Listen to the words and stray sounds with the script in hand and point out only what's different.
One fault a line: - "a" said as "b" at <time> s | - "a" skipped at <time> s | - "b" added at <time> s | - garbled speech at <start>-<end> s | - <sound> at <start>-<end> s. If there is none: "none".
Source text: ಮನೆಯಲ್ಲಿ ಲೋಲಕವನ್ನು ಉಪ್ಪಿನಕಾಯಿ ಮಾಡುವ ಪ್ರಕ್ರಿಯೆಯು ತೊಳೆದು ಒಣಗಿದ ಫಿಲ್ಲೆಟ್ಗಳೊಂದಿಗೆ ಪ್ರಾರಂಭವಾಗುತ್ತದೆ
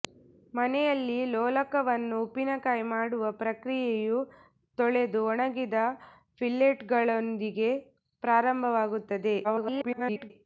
- garbled speech at 9.4-10.3 s